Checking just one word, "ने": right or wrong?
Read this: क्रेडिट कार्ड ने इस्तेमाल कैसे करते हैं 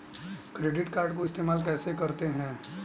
wrong